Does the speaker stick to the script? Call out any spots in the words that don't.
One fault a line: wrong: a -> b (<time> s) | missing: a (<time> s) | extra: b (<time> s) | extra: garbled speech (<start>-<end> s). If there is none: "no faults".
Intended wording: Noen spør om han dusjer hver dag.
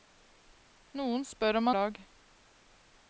missing: han dusjer hver (1.7 s)